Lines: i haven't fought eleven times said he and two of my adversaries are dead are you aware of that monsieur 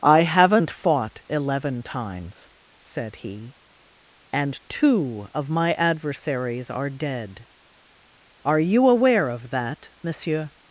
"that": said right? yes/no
yes